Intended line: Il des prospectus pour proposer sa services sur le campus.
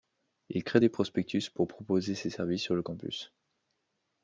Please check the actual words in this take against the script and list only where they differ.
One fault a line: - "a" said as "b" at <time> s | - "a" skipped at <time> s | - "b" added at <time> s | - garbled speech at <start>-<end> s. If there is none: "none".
- "crée" added at 0.6 s
- "sa" said as "ses" at 2.1 s